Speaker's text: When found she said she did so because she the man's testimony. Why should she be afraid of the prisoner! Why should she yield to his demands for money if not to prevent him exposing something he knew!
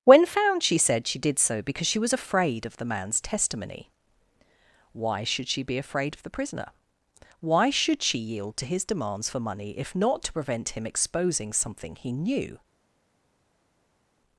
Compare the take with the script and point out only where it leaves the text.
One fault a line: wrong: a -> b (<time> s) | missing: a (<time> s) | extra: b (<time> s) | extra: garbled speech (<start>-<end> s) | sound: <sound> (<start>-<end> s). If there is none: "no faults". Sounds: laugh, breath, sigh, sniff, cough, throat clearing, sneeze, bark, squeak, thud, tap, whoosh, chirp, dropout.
extra: was afraid of (2.0 s)